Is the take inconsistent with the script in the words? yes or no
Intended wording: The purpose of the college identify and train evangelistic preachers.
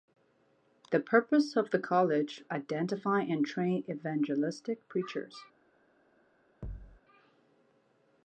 no